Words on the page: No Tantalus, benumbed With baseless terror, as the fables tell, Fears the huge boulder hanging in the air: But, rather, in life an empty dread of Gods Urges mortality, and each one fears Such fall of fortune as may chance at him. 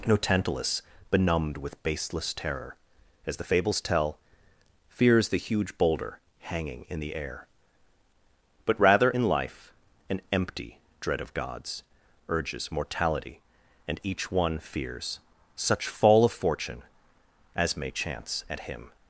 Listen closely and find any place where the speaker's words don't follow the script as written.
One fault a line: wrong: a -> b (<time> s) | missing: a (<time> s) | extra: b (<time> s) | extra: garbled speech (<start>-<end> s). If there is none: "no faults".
no faults